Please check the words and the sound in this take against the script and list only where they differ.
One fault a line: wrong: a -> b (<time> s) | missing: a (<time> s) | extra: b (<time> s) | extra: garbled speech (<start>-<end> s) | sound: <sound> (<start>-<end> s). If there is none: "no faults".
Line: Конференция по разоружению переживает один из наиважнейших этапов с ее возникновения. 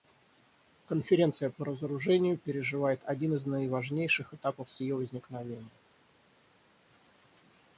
no faults